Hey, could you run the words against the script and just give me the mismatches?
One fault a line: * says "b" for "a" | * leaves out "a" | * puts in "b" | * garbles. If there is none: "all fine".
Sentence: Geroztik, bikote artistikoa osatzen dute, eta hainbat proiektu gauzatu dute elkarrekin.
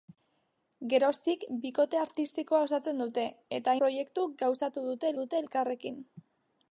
* leaves out "hainbat"
* puts in "dute"